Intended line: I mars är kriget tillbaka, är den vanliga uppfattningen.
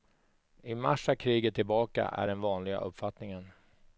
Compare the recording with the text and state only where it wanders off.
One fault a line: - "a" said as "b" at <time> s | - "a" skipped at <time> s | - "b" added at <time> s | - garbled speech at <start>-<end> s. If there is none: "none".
none